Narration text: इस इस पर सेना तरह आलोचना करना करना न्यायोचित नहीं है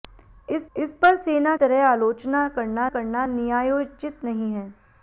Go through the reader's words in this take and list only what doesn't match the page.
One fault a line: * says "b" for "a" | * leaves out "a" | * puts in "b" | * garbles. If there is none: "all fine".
all fine